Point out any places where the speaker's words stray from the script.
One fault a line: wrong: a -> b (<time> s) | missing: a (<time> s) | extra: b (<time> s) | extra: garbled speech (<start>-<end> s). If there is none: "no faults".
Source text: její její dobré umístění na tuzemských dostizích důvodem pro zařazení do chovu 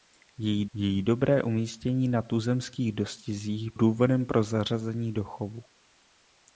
no faults